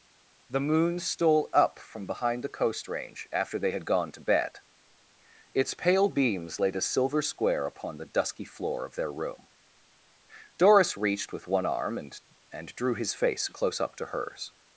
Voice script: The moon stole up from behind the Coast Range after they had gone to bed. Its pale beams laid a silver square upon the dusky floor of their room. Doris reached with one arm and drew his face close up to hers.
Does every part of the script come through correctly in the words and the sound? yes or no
no